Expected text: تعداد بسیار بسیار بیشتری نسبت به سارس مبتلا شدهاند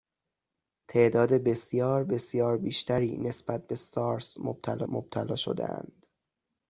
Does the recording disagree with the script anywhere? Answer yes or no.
yes